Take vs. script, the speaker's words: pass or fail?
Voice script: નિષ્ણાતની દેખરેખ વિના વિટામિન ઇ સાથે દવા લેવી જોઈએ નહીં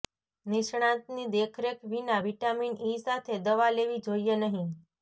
pass